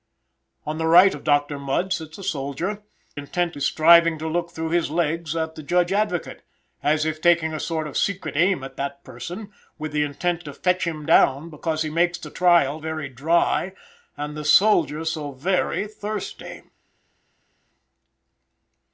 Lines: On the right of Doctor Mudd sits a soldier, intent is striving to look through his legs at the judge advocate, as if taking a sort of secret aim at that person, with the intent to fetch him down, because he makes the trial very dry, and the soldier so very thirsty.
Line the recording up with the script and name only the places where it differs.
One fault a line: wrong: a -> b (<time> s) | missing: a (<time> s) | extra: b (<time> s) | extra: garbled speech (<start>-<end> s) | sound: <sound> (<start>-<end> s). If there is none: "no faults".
no faults